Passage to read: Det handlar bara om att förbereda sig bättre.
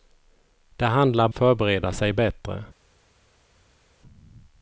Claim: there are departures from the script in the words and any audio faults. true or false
true